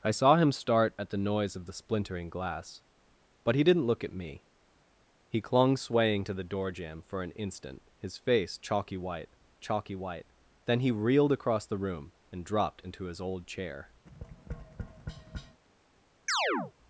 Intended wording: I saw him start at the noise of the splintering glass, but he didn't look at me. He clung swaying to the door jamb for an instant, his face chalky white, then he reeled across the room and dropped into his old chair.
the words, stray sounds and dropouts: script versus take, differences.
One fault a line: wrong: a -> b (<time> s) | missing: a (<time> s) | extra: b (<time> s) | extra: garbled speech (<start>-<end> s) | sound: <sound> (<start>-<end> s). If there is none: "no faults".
extra: chalky white (9.6 s)
sound: tap (14.1-15.6 s)
sound: chirp (16.3-16.7 s)